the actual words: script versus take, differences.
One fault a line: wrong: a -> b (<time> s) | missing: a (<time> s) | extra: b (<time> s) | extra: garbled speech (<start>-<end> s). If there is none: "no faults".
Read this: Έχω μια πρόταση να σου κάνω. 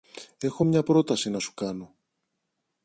no faults